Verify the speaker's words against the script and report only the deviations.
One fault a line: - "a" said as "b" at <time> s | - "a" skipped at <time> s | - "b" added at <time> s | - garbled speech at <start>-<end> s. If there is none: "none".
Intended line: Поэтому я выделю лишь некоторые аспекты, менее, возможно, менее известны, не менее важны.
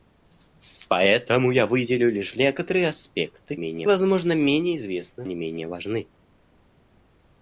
none